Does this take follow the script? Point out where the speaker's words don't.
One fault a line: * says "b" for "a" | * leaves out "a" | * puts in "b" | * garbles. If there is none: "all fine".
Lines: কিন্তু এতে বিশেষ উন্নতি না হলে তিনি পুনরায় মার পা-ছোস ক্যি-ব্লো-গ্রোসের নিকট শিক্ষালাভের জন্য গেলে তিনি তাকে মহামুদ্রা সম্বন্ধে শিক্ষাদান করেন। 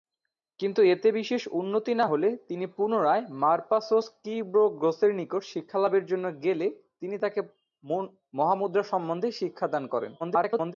* garbles